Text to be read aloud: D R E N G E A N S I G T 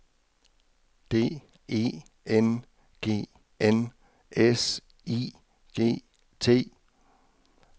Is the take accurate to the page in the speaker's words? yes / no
no